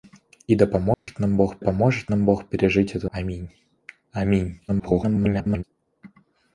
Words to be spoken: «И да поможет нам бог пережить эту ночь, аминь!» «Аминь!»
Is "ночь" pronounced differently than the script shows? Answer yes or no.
yes